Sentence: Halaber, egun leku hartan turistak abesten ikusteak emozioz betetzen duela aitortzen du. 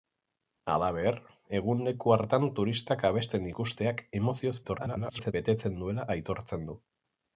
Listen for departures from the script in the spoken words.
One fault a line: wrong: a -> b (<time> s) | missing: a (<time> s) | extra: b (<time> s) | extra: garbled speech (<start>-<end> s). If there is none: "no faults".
extra: garbled speech (4.6-5.3 s)